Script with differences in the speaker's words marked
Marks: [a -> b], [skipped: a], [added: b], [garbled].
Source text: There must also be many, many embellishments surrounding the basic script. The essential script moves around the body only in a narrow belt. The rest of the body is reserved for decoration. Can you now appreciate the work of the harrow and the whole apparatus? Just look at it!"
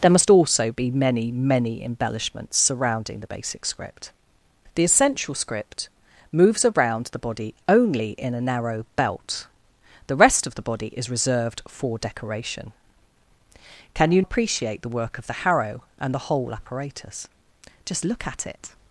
There must also be many, many embellishments surrounding the basic script. The essential script moves around the body only in a narrow belt. The rest of the body is reserved for decoration. Can you [skipped: now] appreciate the work of the harrow and the whole apparatus? Just look at it!"